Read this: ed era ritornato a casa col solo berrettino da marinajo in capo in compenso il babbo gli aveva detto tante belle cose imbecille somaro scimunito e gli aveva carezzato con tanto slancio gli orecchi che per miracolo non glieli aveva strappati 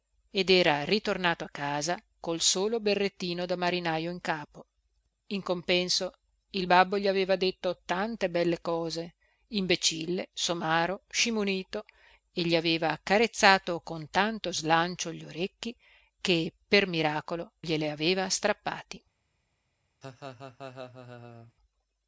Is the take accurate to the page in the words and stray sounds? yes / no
no